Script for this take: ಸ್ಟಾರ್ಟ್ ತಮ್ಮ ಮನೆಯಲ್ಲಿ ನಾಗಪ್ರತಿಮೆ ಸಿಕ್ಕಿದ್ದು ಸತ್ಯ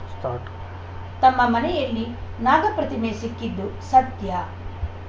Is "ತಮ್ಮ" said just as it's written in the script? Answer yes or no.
yes